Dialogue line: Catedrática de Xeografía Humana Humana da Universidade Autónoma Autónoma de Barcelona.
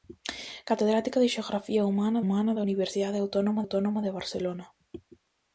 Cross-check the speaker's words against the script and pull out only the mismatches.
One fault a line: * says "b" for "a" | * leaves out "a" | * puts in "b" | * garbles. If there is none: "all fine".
all fine